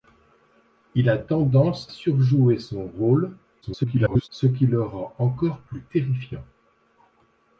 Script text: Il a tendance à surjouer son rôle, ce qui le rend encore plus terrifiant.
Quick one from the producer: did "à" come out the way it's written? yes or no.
no